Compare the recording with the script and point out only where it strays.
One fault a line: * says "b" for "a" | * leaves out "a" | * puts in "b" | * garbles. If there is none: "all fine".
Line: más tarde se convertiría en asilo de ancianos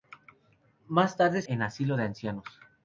* leaves out "se convertiría"